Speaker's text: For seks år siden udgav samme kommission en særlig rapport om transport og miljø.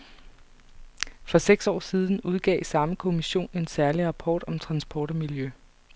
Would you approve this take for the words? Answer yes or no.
yes